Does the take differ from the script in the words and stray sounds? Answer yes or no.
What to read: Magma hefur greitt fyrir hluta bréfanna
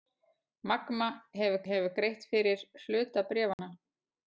yes